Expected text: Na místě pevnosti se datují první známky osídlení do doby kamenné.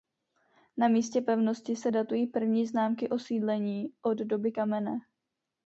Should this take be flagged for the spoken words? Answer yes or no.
yes